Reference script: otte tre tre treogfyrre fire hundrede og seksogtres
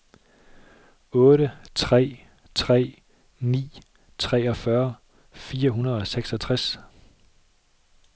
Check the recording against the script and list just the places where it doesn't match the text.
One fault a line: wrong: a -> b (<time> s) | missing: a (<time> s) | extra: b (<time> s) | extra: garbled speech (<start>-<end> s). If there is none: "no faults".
extra: ni (3.4 s)